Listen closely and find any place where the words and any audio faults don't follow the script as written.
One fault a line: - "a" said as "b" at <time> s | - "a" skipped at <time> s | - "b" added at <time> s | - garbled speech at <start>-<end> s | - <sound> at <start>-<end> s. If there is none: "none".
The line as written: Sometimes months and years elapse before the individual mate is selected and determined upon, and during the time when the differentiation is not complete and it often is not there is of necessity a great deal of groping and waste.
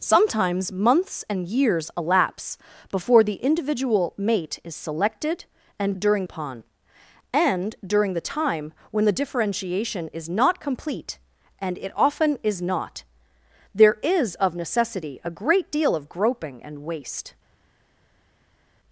- "determined" said as "during" at 6.0 s